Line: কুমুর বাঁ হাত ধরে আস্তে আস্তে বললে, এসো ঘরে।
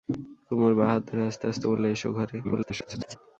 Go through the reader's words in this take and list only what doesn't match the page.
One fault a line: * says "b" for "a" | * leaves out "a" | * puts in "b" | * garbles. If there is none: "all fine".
* garbles